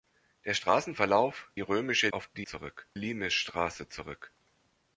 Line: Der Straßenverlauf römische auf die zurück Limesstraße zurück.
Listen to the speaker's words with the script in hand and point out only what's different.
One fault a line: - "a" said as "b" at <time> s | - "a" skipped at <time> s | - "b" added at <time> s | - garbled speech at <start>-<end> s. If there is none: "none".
none